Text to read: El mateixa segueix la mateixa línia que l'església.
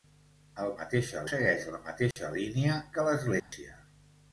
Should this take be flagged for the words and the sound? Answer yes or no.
yes